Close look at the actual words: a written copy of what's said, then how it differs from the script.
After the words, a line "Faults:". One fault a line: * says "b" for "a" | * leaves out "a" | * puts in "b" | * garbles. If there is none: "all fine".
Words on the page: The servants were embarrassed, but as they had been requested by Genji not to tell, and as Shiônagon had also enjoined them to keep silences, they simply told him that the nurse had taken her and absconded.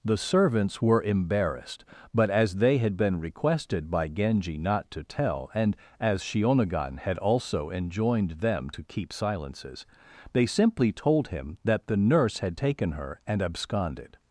The servants were embarrassed, but as they had been requested by Genji not to tell, and as Shiônagon had also enjoined them to keep silences, they simply told him that the nurse had taken her and absconded.
Faults:
all fine